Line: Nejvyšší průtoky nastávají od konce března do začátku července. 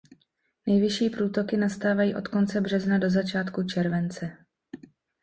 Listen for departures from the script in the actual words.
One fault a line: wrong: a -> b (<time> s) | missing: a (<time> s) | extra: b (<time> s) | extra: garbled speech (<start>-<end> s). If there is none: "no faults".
no faults